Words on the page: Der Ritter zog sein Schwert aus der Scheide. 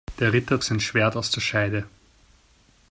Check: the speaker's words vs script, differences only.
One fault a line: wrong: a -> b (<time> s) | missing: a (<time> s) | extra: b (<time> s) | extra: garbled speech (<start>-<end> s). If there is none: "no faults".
missing: zog (0.6 s)